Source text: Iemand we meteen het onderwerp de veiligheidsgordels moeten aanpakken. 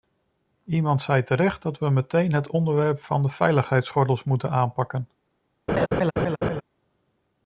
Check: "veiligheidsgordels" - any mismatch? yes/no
no